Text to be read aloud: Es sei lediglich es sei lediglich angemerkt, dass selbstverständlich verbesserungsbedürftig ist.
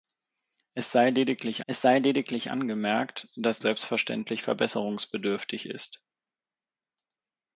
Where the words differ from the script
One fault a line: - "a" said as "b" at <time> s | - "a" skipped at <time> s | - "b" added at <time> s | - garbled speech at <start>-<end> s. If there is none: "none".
none